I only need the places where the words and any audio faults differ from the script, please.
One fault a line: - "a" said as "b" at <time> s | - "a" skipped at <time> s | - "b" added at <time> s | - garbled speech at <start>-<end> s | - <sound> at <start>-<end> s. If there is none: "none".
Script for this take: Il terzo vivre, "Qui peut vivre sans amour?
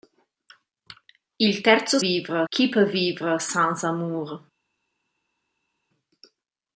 none